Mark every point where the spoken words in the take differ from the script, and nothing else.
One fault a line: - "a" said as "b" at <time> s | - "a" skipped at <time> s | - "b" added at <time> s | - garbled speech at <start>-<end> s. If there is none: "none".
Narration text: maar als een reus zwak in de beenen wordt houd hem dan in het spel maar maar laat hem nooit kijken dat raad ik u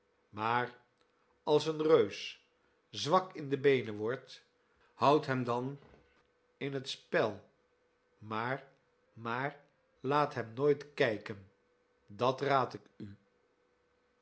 none